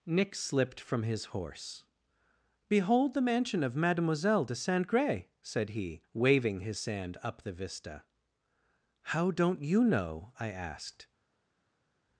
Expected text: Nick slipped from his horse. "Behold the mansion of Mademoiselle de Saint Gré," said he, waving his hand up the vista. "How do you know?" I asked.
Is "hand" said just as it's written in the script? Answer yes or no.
no